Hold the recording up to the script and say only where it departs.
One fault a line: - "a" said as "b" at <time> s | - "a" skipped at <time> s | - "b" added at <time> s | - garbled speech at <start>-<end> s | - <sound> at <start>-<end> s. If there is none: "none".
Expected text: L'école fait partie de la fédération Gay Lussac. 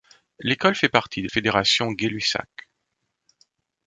- "la" skipped at 1.3 s